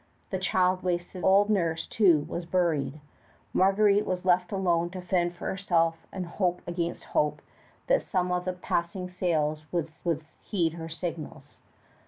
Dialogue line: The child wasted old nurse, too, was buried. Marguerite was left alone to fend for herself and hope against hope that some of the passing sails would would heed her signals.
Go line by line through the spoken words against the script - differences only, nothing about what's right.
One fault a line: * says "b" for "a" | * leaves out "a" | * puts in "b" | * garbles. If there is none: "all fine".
all fine